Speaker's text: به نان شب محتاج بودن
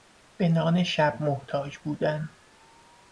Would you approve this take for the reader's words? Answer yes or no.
yes